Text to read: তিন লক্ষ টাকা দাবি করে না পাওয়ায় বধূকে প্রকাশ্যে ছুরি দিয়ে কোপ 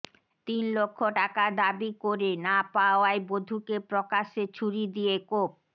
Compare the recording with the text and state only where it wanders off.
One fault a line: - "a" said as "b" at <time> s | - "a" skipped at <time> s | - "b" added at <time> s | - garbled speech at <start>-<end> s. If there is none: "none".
none